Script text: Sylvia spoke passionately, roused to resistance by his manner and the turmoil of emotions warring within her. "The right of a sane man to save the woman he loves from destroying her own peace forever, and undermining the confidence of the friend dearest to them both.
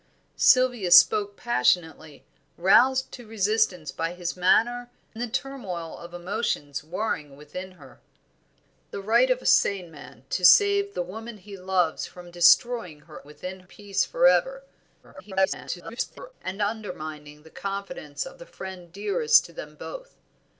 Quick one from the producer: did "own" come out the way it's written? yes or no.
no